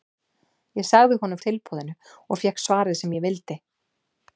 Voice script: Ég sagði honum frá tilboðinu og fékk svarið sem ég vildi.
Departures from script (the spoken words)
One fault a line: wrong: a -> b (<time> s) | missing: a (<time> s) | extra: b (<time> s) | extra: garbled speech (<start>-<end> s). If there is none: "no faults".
missing: frá (1.4 s)